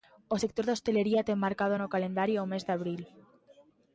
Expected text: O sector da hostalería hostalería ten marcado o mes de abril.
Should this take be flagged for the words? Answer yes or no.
yes